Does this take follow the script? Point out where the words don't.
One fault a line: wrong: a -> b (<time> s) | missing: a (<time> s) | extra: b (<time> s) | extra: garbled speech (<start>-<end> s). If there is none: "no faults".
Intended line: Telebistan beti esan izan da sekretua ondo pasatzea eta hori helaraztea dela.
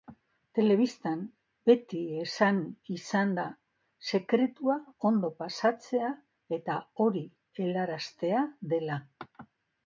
no faults